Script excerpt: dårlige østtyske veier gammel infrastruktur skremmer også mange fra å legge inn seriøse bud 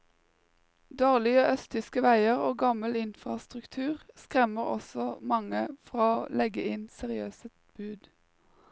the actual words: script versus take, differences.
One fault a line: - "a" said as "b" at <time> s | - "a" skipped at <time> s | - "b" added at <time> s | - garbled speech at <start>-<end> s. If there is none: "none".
- "og" added at 2.5 s